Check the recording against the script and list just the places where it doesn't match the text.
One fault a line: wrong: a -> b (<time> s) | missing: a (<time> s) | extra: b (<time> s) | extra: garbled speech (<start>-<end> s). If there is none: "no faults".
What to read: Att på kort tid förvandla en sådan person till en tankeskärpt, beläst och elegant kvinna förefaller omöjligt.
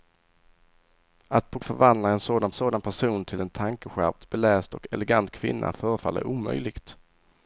missing: kort tid (1.6 s)
extra: sådan (2.5 s)